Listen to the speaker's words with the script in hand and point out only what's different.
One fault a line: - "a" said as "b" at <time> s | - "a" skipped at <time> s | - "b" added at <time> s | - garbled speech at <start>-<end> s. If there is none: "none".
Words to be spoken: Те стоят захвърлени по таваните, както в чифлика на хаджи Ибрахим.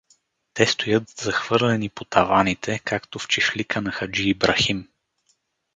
none